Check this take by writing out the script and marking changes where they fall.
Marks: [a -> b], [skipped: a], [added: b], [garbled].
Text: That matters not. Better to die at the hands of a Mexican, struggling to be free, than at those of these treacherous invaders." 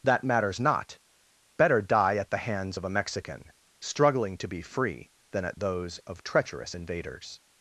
That matters not. Better [skipped: to] die at the hands of a Mexican, struggling to be free, than at those of [skipped: these] treacherous invaders."